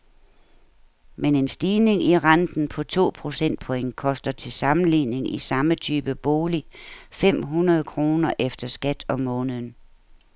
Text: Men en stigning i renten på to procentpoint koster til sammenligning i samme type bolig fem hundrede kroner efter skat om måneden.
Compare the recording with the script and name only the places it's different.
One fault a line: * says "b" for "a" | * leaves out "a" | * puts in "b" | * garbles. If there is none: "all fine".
all fine